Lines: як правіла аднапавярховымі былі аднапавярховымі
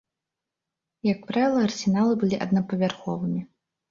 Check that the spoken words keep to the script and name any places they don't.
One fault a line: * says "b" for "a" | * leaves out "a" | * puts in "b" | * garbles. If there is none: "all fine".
* says "арсеналы" for "аднапавярховымі"